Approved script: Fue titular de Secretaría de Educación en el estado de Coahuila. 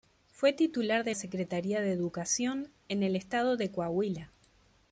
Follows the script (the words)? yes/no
yes